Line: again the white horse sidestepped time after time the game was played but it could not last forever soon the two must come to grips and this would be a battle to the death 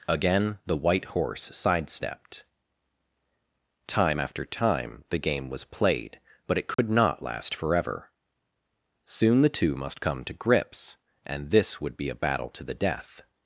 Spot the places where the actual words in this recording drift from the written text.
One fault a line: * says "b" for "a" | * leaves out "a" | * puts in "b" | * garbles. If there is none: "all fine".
all fine